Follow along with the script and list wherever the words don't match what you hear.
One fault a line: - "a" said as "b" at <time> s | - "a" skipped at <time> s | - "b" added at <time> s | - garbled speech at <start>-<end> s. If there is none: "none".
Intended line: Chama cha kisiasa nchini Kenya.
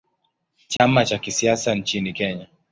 none